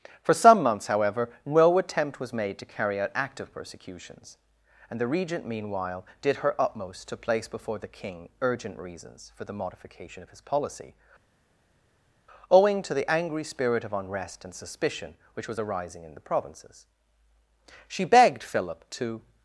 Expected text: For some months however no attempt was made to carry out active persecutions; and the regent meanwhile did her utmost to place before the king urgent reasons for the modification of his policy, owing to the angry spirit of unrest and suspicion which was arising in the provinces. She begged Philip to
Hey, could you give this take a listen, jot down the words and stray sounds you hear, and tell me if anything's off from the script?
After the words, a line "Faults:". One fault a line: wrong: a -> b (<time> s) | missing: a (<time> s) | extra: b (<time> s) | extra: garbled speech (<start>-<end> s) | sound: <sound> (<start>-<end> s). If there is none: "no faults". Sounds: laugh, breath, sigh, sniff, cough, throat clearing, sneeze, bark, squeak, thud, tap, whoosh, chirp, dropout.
For some months however no attempt was made to carry out active persecutions; and the regent meanwhile did her utmost to place before the king urgent reasons for the modification of his policy, owing to the angry spirit of unrest and suspicion which was arising in the provinces. She begged Philip to
Faults:
no faults